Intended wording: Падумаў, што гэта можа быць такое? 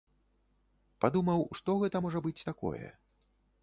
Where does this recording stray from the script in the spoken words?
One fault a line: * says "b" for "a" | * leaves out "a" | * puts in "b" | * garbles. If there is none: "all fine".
all fine